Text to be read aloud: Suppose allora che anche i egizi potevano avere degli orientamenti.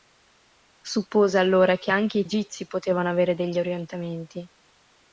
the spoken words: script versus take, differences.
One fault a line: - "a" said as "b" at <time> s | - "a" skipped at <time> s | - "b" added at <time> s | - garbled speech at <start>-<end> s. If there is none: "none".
none